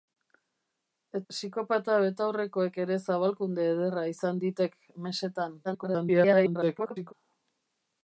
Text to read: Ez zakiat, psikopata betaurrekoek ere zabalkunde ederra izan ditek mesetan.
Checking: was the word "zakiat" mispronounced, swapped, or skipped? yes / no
yes